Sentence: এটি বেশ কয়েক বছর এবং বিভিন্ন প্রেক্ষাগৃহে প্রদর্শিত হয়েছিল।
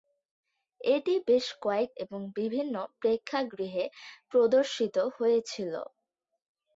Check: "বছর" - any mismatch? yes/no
yes